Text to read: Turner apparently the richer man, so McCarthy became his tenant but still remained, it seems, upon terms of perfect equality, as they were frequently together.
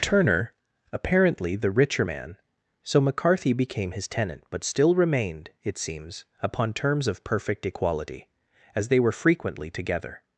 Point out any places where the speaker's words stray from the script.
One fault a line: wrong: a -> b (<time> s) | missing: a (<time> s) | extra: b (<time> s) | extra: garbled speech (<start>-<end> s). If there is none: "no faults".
no faults